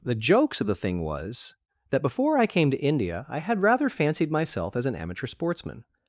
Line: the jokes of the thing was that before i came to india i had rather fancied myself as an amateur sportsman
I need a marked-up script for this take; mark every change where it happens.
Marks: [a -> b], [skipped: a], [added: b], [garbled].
the jokes of the thing was that before i came to india i had rather fancied myself as an amateur sportsman